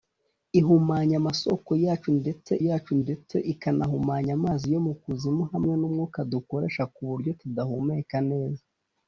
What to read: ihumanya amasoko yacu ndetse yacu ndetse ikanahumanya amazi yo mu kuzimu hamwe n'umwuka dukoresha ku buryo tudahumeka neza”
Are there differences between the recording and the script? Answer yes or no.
no